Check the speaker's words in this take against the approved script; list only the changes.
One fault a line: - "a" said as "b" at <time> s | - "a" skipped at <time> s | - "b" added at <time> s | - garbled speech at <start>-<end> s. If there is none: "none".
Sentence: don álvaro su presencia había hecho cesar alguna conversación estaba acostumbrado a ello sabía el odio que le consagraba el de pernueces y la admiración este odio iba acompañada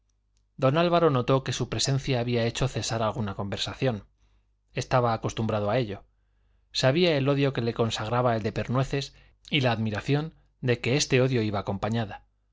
- "notó que" added at 1.1 s
- "de que" added at 10.6 s